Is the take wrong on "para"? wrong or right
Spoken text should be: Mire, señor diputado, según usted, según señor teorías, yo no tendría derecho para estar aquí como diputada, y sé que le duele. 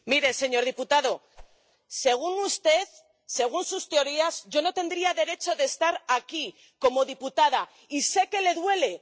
wrong